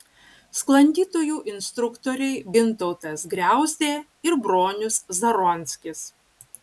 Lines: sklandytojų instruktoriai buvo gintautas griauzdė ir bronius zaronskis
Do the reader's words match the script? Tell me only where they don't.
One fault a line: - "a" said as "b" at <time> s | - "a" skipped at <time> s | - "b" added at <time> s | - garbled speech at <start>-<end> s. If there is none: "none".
- "buvo" skipped at 2.4 s